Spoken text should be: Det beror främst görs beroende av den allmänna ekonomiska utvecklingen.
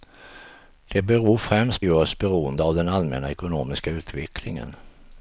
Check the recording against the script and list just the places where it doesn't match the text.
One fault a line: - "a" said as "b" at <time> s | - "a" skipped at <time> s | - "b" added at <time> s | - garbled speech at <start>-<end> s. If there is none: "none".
none